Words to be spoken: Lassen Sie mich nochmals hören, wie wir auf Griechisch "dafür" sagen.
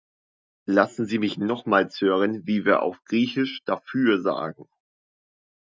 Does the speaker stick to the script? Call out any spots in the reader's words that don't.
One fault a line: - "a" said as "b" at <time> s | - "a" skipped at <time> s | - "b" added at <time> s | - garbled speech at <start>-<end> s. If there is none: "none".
none